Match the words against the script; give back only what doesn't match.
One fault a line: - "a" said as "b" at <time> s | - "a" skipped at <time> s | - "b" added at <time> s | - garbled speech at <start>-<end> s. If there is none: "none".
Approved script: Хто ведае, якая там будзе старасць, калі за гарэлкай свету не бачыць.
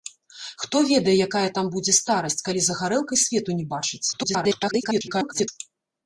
- garbled speech at 4.1-5.5 s